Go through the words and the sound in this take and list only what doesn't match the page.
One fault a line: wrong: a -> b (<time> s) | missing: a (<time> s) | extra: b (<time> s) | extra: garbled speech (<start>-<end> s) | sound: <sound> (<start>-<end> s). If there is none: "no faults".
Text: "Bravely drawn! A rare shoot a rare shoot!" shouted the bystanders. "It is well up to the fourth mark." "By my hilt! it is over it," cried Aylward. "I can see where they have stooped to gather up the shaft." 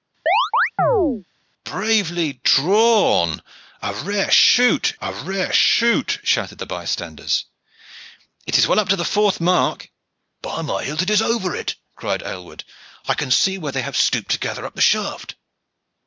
sound: chirp (0.3-1.2 s)